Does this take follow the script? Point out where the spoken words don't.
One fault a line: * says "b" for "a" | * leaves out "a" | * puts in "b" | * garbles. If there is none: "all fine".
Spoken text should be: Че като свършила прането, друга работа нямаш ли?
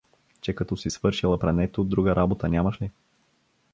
* puts in "си"